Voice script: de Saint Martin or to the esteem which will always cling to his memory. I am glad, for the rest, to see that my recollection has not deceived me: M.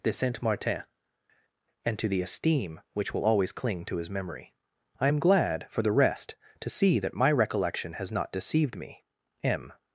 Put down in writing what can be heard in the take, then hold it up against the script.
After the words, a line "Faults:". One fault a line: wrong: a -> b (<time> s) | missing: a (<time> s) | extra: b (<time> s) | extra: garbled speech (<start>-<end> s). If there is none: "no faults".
de Saint Martin and to the esteem which will always cling to his memory. I am glad, for the rest, to see that my recollection has not deceived me: M.
Faults:
wrong: or -> and (1.8 s)